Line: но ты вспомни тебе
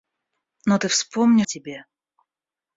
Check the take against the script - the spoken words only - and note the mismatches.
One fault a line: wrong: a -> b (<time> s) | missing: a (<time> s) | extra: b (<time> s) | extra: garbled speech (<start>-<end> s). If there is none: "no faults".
no faults